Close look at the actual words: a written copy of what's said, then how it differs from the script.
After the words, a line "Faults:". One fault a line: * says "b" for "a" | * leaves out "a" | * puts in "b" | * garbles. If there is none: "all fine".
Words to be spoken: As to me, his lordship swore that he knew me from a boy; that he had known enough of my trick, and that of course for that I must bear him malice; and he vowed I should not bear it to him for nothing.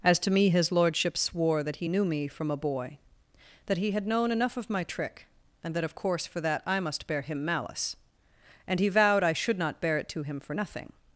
As to me, his lordship swore that he knew me from a boy; that he had known enough of my trick, and that of course for that I must bear him malice; and he vowed I should not bear it to him for nothing.
Faults:
all fine